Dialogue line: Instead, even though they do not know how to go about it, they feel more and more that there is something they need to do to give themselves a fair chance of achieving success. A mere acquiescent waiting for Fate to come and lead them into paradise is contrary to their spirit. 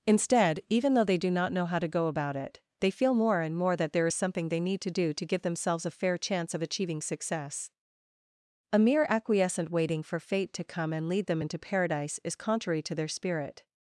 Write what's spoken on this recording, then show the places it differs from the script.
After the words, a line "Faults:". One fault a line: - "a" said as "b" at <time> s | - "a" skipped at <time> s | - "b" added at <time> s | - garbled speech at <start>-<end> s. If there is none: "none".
Instead, even though they do not know how to go about it, they feel more and more that there is something they need to do to give themselves a fair chance of achieving success. A mere acquiescent waiting for Fate to come and lead them into paradise is contrary to their spirit.
Faults:
none